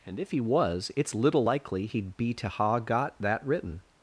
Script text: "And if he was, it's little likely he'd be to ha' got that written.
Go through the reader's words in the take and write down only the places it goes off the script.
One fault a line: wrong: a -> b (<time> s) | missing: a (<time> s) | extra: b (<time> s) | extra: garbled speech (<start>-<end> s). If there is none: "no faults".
no faults